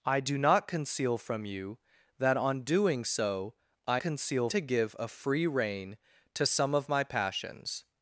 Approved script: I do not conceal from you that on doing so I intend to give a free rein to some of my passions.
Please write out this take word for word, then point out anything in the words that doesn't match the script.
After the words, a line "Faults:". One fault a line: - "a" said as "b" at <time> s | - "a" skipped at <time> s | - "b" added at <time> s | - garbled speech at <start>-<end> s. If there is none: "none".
I do not conceal from you that on doing so I conceal to give a free rein to some of my passions.
Faults:
- "intend" said as "conceal" at 4.0 s